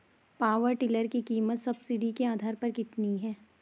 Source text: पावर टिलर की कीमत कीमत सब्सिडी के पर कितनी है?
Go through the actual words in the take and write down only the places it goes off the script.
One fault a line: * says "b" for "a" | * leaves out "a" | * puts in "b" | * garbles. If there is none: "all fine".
* leaves out "कीमत"
* puts in "आधार"